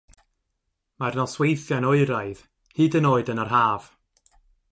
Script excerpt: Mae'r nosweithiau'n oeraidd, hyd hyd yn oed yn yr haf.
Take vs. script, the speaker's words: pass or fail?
fail